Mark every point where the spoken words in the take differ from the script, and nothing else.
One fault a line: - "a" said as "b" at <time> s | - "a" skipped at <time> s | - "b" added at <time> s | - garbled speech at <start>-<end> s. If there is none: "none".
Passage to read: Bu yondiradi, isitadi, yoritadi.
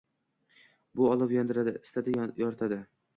- "olov" added at 1.1 s